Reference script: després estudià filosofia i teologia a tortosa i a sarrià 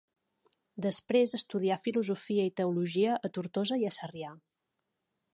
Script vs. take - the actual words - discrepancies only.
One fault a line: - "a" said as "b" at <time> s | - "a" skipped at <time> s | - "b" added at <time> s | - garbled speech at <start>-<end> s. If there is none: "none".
none